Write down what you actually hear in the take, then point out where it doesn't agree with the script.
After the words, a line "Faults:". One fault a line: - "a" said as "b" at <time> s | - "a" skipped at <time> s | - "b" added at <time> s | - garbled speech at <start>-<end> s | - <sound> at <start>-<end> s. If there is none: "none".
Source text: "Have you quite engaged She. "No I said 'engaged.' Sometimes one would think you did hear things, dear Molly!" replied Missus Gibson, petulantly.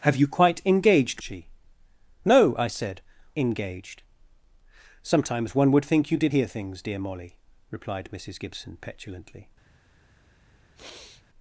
"Have you quite engaged She. "No I said 'engaged.' Sometimes one would think you did hear things, dear Molly!" replied Missus Gibson, petulantly.
Faults:
- sniff at 10.8-11.2 s